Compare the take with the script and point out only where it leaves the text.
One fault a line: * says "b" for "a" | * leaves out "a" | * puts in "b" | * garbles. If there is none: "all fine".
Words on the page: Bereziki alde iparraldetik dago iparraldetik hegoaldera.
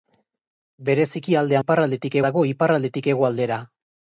all fine